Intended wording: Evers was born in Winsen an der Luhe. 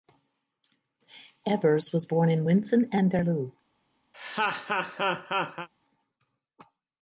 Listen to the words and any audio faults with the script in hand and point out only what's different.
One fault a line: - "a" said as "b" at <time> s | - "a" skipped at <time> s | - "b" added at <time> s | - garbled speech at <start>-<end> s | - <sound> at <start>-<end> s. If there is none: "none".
- laugh at 4.1-5.7 s